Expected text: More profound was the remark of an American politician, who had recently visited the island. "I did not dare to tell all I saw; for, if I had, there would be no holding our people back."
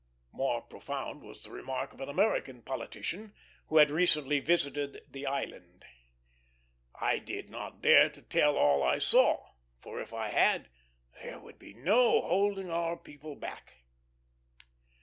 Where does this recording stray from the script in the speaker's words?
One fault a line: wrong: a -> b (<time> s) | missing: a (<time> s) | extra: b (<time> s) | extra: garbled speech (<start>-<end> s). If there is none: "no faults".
no faults